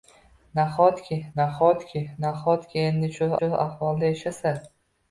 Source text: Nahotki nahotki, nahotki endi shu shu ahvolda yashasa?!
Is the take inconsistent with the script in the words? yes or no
no